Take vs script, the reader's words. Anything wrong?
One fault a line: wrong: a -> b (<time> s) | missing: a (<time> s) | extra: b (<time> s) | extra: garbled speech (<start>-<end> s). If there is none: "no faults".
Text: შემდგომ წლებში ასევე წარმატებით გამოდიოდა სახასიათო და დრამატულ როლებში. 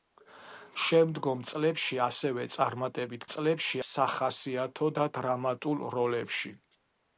wrong: გამოდიოდა -> წლებში (3.3 s)